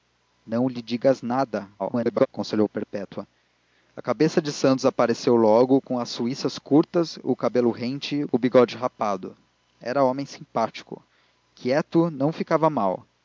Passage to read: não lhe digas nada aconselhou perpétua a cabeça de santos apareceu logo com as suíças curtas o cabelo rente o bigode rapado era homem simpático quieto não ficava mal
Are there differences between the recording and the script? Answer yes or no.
yes